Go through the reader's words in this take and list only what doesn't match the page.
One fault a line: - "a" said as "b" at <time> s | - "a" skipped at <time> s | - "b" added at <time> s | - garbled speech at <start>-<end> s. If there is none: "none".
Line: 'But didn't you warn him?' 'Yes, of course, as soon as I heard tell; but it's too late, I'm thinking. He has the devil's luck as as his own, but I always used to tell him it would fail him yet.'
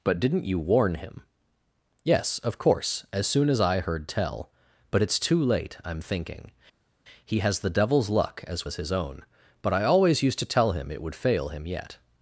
none